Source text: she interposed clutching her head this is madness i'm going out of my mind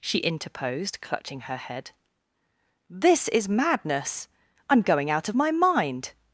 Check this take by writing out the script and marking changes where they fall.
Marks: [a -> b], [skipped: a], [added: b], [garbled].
she interposed clutching her head this is madness i'm going out of my mind